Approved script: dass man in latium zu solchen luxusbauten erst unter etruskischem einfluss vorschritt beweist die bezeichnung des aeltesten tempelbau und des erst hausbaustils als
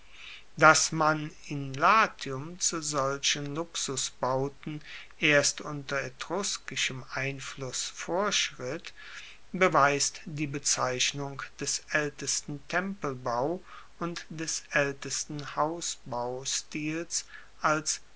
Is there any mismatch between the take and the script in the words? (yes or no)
yes